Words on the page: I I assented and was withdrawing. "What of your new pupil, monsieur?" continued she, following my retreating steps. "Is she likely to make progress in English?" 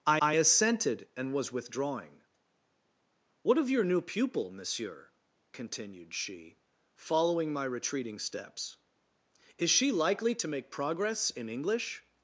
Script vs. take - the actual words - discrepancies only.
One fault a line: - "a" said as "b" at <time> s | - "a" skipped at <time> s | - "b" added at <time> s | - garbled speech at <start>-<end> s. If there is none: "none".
none